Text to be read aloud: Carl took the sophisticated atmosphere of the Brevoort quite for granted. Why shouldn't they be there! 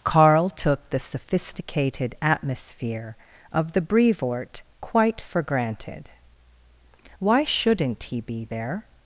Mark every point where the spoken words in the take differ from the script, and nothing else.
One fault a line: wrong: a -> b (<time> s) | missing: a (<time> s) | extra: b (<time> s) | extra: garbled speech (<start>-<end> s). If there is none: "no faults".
wrong: they -> he (8.0 s)